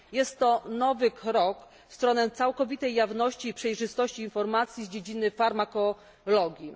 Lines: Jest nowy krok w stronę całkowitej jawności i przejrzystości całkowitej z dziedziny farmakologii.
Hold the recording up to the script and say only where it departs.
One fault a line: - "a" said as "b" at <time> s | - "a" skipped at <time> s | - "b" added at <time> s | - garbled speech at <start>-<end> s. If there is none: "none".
- "to" added at 0.4 s
- "całkowitej" said as "informacji" at 4.2 s